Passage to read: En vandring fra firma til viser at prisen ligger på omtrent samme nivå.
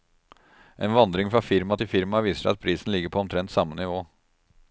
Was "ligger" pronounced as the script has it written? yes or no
yes